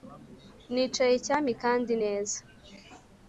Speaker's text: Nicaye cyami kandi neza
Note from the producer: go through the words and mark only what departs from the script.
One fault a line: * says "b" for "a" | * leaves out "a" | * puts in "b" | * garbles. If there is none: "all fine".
all fine